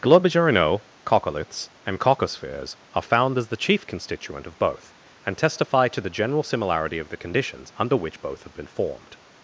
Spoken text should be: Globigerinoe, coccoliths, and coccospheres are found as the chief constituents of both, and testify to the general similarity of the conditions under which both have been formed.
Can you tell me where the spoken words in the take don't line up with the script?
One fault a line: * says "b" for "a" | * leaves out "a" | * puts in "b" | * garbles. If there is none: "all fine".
* says "constituent" for "constituents"